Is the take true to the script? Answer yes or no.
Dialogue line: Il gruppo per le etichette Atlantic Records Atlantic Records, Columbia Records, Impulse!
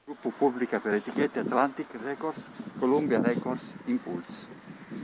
no